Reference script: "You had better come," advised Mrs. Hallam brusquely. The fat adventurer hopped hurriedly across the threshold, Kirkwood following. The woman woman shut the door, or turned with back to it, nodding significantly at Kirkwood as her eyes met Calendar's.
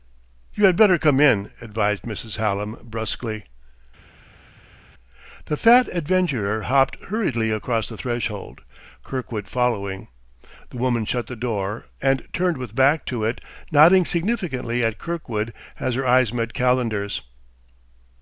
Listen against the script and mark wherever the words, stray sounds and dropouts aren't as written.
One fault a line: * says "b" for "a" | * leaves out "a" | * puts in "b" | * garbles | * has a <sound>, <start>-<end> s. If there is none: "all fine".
* puts in "in"
* leaves out "woman"
* says "and" for "or"